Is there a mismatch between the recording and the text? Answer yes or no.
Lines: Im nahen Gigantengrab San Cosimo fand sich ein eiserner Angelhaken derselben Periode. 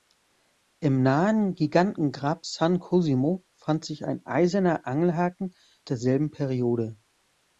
no